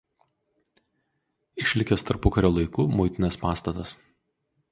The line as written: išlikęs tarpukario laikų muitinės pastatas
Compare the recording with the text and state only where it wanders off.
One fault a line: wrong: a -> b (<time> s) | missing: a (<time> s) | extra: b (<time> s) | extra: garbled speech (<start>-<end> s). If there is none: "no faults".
no faults